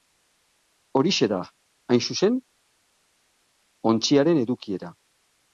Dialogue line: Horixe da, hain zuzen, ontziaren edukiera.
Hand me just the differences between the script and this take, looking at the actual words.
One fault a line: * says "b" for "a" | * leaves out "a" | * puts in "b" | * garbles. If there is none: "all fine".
all fine